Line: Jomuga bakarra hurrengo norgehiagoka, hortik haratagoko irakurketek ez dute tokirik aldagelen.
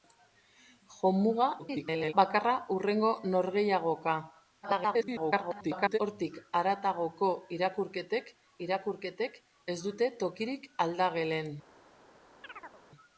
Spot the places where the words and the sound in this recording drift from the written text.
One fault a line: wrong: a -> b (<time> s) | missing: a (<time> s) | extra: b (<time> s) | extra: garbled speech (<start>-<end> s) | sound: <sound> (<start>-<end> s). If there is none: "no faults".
extra: garbled speech (1.6-2.1 s)
extra: garbled speech (4.6-6.0 s)
extra: irakurketek (8.7 s)
sound: chirp (12.4-12.8 s)